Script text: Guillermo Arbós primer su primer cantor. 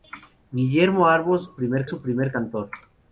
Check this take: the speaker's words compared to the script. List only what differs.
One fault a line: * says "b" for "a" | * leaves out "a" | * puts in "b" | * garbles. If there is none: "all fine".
all fine